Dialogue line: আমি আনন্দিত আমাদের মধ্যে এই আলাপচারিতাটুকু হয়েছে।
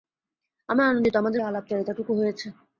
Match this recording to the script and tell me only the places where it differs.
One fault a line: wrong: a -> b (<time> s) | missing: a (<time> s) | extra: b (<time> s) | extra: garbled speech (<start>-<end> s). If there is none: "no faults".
missing: মধ্যে (1.4 s)